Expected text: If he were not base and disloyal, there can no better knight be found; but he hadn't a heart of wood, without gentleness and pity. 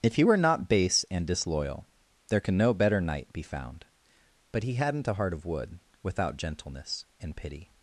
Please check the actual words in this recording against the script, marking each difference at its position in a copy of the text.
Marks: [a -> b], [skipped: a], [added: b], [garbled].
If he were not base and disloyal, there can no better knight be found; but he hadn't a heart of wood, without gentleness and pity.